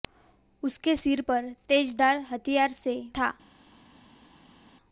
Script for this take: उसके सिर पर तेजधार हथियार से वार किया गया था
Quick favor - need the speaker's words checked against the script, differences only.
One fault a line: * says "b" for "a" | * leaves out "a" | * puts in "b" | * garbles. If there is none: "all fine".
* leaves out "वार किया गया"